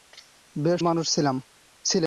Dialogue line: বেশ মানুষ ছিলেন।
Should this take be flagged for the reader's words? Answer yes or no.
no